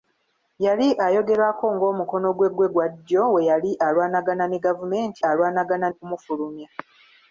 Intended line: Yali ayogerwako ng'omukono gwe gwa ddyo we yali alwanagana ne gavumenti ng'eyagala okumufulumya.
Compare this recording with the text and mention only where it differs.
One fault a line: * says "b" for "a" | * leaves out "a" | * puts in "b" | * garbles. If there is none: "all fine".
* puts in "gwe"
* says "alwanagana" for "ng'eyagala"